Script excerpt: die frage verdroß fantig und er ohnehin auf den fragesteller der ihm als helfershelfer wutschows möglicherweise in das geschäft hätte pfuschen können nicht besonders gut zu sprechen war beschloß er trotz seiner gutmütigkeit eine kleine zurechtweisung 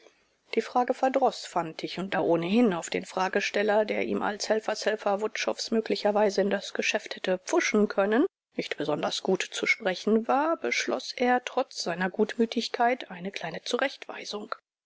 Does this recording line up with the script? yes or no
yes